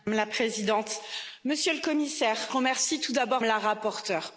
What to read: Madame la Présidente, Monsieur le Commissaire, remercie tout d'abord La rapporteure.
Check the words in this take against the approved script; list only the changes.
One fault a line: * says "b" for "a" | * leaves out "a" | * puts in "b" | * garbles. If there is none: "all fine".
all fine